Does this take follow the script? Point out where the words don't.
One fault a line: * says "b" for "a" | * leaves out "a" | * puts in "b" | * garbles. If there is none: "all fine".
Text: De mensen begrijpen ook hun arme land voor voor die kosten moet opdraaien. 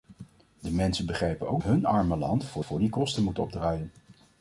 all fine